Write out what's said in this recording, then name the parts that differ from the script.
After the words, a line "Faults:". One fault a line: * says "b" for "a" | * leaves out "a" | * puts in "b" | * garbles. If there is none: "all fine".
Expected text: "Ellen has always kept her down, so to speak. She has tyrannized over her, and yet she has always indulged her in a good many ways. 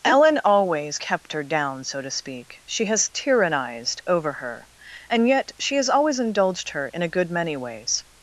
"Ellen always kept her down, so to speak. She has tyrannized over her, and yet she has always indulged her in a good many ways.
Faults:
* leaves out "has"